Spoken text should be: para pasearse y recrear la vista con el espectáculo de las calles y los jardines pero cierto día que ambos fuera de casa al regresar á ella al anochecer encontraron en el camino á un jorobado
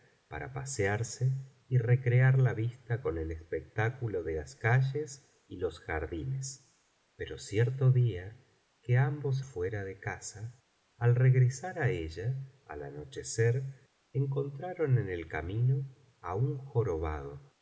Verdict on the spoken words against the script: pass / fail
pass